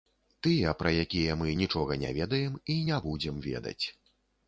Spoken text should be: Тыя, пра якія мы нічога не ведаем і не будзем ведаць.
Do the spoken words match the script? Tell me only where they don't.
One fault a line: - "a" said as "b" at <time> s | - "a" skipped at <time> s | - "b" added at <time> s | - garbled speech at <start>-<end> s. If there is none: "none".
none